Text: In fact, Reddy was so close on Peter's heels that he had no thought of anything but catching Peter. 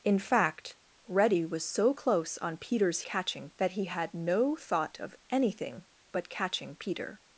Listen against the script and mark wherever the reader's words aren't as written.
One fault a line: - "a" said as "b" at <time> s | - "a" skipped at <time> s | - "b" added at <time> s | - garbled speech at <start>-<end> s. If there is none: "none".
- "heels" said as "catching" at 3.0 s